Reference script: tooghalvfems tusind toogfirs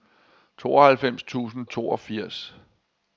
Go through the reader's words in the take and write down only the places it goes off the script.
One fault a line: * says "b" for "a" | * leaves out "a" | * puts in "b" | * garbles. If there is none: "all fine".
all fine